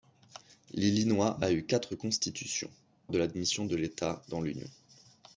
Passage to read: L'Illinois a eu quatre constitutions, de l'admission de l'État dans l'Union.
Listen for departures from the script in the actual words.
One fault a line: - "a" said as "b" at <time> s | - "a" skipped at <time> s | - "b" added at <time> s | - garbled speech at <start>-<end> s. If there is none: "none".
none